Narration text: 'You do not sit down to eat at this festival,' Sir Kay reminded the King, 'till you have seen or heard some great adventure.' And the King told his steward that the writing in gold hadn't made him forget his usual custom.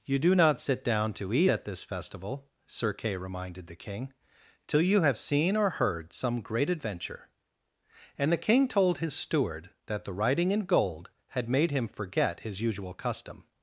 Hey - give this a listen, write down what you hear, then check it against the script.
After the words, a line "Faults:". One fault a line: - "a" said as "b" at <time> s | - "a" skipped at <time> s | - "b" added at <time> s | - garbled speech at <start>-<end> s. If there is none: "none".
'You do not sit down to eat at this festival,' Sir Kay reminded the King, 'till you have seen or heard some great adventure.' And the King told his steward that the writing in gold had made him forget his usual custom.
Faults:
- "hadn't" said as "had" at 11.3 s